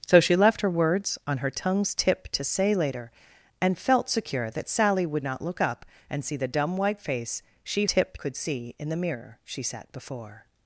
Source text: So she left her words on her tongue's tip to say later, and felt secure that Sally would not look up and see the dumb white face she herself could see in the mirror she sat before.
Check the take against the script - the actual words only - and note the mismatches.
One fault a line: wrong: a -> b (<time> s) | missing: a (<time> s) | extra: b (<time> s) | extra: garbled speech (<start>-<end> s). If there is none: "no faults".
wrong: herself -> tip (7.8 s)